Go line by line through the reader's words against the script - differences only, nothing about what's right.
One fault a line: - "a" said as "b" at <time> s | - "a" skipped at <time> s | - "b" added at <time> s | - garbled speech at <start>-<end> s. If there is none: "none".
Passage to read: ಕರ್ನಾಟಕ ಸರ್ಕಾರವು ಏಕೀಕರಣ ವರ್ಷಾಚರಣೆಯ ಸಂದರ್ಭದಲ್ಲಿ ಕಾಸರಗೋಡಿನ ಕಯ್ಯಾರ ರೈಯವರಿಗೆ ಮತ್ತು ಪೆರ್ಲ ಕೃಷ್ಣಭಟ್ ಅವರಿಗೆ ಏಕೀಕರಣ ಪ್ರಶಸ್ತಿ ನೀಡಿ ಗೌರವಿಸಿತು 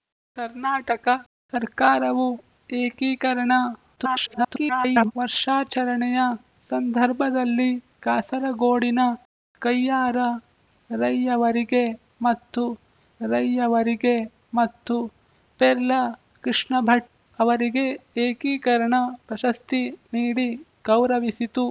- garbled speech at 4.0-5.1 s
- "ರೈಯವರಿಗೆ ಮತ್ತು" added at 13.2 s